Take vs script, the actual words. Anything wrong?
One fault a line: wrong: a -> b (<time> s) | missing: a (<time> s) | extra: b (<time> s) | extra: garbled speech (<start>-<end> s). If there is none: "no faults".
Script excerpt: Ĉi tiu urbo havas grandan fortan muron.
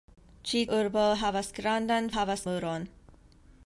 missing: tiu (0.6 s)
wrong: fortan -> havas (2.2 s)